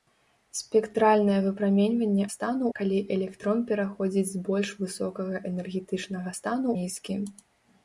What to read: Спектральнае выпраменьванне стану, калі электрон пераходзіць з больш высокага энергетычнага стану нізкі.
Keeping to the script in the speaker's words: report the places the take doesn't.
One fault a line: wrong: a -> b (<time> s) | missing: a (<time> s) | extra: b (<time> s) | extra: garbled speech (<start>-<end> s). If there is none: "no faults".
no faults